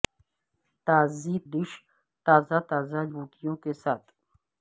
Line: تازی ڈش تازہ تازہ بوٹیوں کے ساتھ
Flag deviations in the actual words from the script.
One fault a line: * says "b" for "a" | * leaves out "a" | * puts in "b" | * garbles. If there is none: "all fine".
all fine